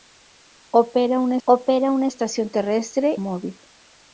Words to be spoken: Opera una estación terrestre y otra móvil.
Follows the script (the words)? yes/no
no